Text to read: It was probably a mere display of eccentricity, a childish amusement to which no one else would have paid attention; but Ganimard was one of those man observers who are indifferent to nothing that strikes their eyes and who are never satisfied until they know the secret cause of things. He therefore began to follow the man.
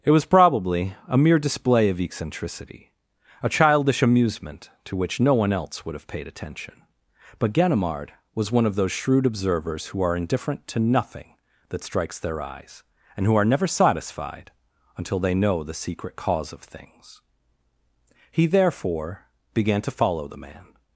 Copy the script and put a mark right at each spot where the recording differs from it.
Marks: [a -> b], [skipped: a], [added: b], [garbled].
It was probably a mere display of eccentricity, a childish amusement to which no one else would have paid attention; but Ganimard was one of those [man -> shrewd] observers who are indifferent to nothing that strikes their eyes and who are never satisfied until they know the secret cause of things. He therefore began to follow the man.